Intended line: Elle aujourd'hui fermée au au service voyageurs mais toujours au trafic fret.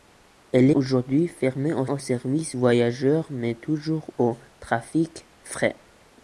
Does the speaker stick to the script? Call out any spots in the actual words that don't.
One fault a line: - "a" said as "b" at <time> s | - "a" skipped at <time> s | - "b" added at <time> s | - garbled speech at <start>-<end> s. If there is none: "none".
none